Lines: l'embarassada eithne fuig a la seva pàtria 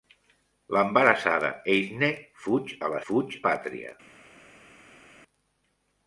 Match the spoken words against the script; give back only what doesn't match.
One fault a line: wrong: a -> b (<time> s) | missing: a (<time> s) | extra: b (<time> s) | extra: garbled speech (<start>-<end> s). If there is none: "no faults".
wrong: seva -> fuig (3.1 s)